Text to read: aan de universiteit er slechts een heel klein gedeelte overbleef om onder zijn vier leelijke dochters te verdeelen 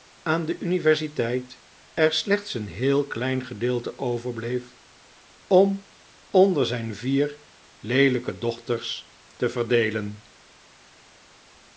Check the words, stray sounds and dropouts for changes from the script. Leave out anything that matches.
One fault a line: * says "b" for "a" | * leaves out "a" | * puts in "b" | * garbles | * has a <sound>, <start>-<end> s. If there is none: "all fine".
all fine